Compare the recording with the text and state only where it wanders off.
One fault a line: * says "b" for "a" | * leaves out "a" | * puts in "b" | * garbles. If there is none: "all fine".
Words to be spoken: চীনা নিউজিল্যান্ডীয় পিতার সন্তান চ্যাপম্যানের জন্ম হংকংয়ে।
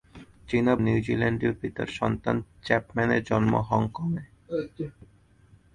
all fine